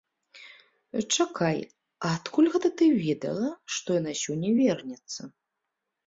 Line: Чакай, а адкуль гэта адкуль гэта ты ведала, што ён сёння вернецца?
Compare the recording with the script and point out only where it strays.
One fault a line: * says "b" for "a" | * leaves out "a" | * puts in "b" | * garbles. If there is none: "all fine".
* leaves out "адкуль гэта"
* says "яна" for "ён"